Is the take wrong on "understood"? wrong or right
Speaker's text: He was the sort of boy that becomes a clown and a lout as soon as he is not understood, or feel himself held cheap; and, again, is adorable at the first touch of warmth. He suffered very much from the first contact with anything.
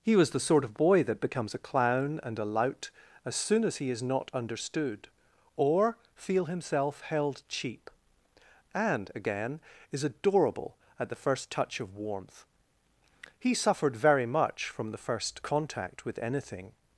right